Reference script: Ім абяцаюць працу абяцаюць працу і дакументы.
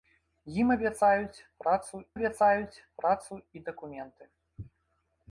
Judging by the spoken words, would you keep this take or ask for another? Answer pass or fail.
pass